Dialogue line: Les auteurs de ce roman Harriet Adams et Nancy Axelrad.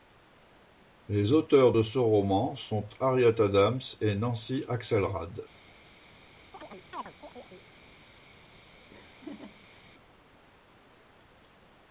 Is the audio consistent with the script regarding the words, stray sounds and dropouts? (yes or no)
no